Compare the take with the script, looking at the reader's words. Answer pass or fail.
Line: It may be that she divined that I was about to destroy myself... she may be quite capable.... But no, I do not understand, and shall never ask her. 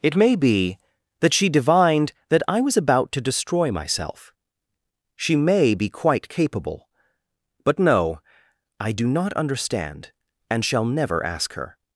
pass